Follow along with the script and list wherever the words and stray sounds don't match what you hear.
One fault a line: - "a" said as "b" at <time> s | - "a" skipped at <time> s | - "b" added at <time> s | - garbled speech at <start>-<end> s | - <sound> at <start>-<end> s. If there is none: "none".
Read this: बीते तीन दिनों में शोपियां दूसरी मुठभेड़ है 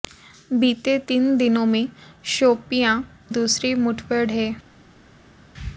none